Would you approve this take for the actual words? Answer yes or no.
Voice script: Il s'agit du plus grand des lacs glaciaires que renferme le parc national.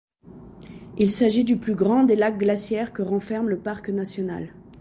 yes